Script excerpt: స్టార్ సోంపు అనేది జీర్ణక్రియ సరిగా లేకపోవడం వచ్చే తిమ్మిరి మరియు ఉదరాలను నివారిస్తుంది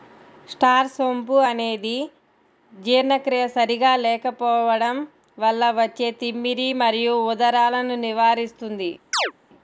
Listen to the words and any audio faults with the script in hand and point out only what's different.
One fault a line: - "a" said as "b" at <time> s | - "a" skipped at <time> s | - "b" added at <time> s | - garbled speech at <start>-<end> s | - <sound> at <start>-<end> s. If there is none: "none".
- "వల్ల" added at 5.4 s
- chirp at 9.1-9.3 s